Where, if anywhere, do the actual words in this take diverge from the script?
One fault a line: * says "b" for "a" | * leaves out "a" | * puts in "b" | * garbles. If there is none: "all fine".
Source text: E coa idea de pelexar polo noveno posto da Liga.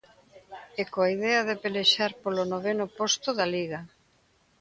all fine